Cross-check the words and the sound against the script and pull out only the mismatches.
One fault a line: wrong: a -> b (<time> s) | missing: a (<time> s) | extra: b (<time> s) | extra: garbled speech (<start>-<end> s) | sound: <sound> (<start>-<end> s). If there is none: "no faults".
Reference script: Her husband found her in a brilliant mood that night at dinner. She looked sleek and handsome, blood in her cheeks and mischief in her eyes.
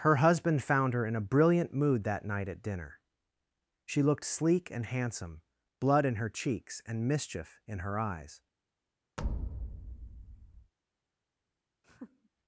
sound: thud (9.2-10.7 s)
sound: laugh (11.8-12.3 s)